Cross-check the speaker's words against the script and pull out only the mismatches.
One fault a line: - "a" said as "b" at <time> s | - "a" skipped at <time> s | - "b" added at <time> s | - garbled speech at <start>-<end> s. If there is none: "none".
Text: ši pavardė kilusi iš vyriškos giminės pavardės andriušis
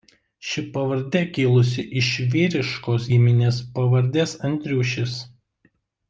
none